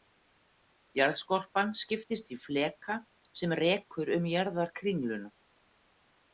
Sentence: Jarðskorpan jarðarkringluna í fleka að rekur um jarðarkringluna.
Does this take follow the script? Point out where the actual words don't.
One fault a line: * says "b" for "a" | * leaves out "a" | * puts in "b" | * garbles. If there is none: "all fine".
* says "skiptist" for "jarðarkringluna"
* says "sem" for "að"